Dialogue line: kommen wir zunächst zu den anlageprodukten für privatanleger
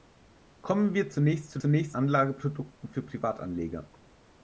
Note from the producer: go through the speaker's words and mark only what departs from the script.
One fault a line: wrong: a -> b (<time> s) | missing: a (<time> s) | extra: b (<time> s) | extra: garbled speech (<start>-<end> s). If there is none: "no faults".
wrong: den -> zunächst (1.6 s)